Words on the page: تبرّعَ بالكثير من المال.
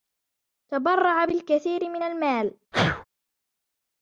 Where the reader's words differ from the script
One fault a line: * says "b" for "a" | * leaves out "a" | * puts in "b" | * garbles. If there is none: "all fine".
all fine